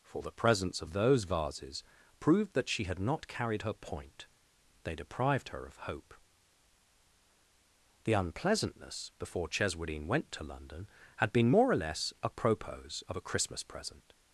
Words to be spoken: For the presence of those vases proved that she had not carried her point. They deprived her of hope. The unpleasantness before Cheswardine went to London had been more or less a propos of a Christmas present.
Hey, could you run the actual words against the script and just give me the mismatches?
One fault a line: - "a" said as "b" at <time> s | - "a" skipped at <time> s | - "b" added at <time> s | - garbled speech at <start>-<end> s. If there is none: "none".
none